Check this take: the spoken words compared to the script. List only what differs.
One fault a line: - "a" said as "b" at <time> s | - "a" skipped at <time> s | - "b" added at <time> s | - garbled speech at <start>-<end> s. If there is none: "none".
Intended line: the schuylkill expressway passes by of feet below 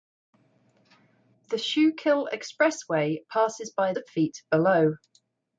none